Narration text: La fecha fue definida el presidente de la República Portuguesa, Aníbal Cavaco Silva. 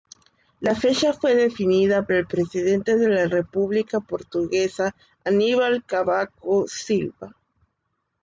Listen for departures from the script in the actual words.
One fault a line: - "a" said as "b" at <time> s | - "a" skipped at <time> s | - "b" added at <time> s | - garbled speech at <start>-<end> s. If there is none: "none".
none